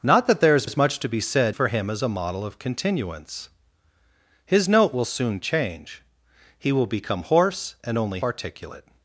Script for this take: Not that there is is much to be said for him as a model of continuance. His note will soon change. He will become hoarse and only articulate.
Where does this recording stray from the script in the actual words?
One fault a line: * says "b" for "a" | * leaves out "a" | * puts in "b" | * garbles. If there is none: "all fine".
all fine